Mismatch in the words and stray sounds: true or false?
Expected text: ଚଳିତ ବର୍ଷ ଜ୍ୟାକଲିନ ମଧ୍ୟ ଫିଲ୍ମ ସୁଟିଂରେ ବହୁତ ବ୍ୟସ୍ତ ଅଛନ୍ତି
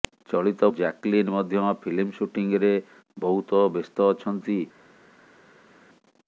true